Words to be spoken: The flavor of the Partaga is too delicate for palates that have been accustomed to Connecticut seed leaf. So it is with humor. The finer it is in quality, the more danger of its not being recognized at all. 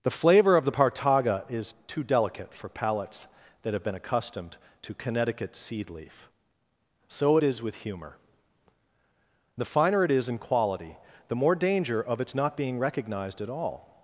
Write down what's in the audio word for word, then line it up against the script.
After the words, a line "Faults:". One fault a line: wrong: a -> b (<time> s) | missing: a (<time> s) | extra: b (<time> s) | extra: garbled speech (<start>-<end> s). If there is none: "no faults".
The flavor of the Partaga is too delicate for palates that have been accustomed to Connecticut seed leaf. So it is with humor. The finer it is in quality, the more danger of its not being recognized at all.
Faults:
no faults